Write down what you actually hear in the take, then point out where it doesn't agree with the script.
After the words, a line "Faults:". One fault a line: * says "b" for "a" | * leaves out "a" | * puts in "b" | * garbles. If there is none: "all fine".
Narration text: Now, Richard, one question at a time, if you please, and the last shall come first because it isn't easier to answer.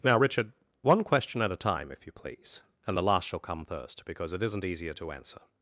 Now, Richard, one question at a time, if you please, and the last shall come first because it isn't easier to answer.
Faults:
all fine